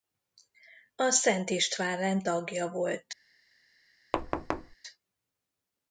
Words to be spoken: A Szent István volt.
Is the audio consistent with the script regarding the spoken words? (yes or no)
no